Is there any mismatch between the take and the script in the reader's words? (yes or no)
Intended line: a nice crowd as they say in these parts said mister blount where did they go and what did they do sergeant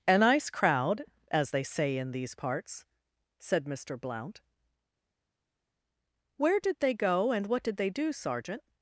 no